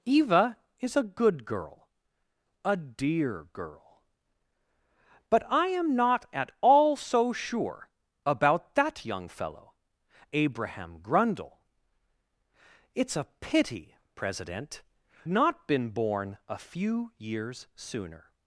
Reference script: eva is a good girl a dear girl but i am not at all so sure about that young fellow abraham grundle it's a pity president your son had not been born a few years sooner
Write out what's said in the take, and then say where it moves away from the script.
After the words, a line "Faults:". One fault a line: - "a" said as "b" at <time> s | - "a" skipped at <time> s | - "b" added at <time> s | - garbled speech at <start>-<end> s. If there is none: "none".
eva is a good girl a dear girl but i am not at all so sure about that young fellow abraham grundle it's a pity president not been born a few years sooner
Faults:
- "your son had" skipped at 14.8 s